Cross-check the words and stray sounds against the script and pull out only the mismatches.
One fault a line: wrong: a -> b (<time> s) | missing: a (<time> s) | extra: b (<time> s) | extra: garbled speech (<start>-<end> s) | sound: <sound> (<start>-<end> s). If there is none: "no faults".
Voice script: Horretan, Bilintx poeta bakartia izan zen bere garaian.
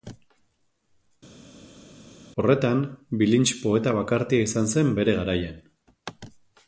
no faults